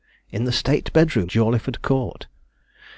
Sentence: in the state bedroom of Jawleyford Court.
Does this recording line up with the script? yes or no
no